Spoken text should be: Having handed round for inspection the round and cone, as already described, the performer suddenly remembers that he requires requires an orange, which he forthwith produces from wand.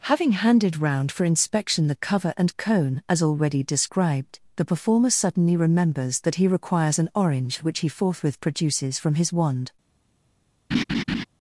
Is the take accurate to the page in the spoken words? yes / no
no